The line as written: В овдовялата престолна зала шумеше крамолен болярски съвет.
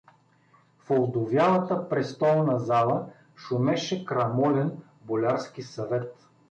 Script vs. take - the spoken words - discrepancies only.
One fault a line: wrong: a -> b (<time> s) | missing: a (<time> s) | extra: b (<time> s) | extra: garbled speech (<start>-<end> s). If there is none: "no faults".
no faults